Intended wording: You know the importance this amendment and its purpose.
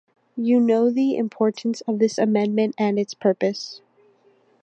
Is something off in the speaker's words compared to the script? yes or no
yes